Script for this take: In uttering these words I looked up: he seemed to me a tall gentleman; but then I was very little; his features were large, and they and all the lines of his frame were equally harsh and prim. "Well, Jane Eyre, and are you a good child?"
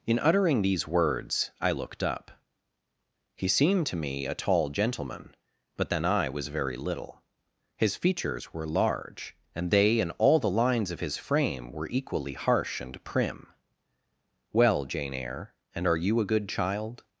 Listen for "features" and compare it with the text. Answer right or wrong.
right